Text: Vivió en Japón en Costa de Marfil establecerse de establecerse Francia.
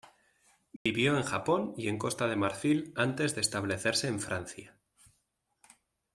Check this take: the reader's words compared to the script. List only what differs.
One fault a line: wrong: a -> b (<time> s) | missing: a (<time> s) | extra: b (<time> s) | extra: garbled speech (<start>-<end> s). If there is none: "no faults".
extra: y (1.8 s)
wrong: establecerse -> antes (3.0 s)
extra: en (4.1 s)